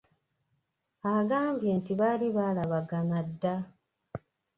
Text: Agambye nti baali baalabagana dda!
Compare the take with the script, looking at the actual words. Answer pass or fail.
pass